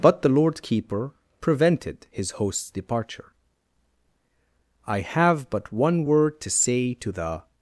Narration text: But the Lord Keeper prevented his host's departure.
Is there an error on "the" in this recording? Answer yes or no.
no